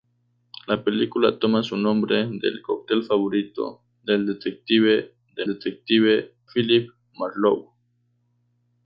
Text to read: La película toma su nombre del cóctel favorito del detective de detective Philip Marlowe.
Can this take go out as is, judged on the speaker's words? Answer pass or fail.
pass